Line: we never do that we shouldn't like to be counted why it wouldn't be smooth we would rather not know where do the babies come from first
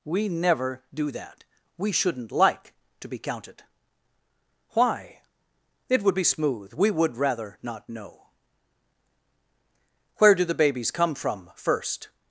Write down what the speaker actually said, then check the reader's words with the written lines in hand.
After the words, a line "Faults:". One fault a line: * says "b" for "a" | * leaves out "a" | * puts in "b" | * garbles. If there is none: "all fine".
we never do that we shouldn't like to be counted why it would be smooth we would rather not know where do the babies come from first
Faults:
* says "would" for "wouldn't"